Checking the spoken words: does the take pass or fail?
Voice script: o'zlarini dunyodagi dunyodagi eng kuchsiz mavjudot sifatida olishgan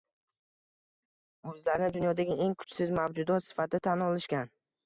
fail